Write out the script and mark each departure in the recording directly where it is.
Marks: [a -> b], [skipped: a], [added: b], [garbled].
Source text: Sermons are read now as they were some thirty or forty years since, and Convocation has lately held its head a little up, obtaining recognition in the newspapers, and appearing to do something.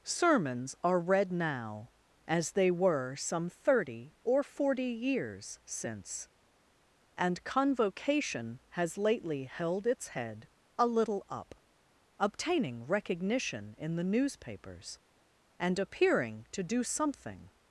Sermons are read now as they were some thirty or forty years since, and Convocation has lately held its head a little up, obtaining recognition in the newspapers, and appearing to do something.